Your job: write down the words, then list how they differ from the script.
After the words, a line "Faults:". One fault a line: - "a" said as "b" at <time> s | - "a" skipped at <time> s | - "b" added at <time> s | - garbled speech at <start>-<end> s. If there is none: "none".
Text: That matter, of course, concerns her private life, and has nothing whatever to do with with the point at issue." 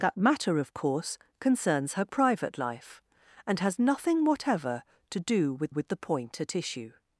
That matter, of course, concerns her private life, and has nothing whatever to do with with the point at issue."
Faults:
none